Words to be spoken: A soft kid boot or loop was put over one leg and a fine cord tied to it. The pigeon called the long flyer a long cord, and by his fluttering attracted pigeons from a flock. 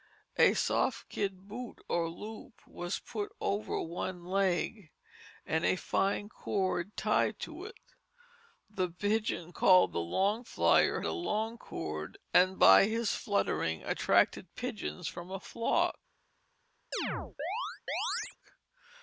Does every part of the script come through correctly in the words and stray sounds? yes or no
no